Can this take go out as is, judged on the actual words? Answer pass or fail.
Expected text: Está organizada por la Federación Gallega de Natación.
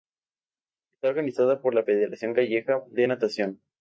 pass